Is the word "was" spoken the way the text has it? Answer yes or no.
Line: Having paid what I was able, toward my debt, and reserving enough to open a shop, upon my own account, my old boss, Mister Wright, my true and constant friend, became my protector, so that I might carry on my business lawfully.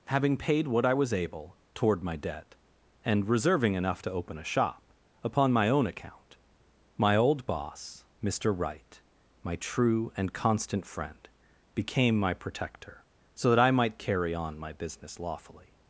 yes